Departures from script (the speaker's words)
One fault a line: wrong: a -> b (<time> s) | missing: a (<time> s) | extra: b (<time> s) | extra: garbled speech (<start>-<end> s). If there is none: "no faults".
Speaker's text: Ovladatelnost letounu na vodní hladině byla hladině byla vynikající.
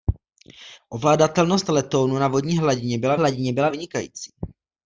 no faults